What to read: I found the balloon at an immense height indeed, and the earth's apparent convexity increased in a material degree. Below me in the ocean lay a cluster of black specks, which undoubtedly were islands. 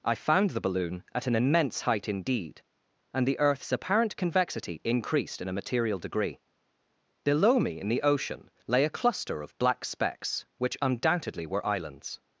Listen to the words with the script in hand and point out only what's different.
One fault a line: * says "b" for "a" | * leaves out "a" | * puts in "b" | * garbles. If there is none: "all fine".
all fine